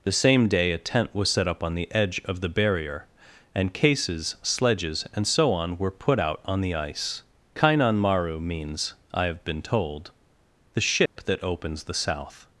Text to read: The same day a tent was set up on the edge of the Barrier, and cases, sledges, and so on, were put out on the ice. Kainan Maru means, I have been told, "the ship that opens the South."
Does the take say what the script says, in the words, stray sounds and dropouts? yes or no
no